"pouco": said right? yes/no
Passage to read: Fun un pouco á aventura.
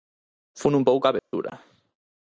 yes